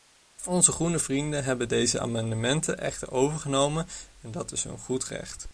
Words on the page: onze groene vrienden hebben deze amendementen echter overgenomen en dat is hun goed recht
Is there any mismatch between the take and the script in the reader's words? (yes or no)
no